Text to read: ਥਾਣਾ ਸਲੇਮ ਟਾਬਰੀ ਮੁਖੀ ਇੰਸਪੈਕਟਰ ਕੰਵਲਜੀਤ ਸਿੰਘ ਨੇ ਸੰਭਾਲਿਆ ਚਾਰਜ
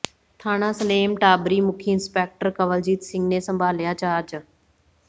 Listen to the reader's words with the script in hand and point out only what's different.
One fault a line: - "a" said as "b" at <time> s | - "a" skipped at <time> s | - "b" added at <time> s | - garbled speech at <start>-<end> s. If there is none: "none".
none